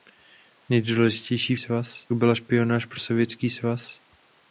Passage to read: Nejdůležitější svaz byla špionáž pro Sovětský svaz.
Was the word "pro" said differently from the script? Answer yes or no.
no